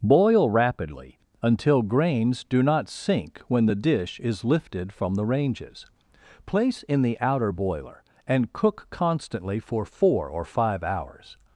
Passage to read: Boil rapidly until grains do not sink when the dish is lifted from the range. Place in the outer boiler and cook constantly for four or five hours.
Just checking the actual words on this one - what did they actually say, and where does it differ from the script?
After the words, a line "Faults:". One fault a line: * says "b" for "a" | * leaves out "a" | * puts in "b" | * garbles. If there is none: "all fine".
Boil rapidly until grains do not sink when the dish is lifted from the ranges. Place in the outer boiler and cook constantly for four or five hours.
Faults:
* says "ranges" for "range"